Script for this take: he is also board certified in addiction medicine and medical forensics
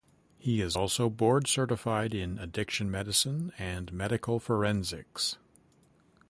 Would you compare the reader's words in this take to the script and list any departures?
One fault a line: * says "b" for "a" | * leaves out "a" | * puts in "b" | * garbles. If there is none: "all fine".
all fine